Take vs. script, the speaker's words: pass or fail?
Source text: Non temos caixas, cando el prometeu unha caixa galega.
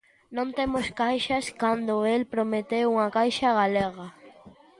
pass